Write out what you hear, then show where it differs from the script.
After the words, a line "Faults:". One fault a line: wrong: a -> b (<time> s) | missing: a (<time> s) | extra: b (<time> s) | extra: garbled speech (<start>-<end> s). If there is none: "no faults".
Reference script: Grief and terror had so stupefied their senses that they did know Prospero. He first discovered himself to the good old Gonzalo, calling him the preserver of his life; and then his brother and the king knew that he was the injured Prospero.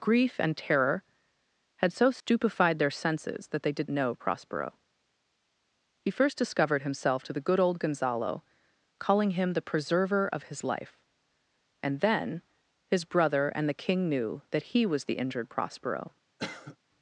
Grief and terror had so stupefied their senses that they did know Prospero. He first discovered himself to the good old Gonzalo, calling him the preserver of his life; and then his brother and the king knew that he was the injured Prospero.
Faults:
no faults